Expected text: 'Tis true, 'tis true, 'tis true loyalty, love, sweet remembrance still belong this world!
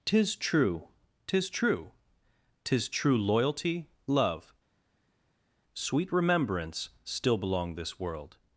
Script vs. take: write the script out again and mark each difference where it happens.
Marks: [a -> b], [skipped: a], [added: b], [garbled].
'Tis true, 'tis true, 'tis true loyalty, love, sweet remembrance still belong this world!